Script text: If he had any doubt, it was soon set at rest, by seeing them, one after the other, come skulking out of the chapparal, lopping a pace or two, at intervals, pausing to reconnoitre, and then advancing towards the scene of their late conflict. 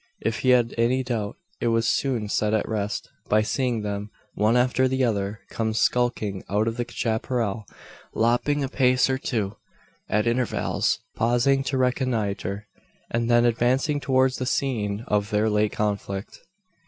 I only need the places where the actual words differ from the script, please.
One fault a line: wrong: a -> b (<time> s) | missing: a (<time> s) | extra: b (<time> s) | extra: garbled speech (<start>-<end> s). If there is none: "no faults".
no faults